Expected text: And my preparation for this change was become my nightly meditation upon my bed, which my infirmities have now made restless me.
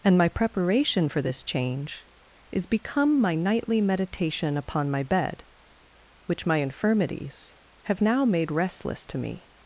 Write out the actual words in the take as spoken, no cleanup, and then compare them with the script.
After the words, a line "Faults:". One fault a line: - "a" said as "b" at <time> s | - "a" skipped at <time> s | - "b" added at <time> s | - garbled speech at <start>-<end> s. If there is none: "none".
And my preparation for this change is become my nightly meditation upon my bed, which my infirmities have now made restless to me.
Faults:
- "was" said as "is" at 2.5 s
- "to" added at 9.1 s